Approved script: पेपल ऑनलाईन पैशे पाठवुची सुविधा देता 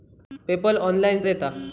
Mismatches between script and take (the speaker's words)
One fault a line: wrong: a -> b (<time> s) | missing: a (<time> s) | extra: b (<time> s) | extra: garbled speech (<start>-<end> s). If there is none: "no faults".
missing: पैशे पाठवुची सुविधा (1.2 s)